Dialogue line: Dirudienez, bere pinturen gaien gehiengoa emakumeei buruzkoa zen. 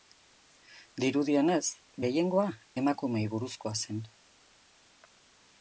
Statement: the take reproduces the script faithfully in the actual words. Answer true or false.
false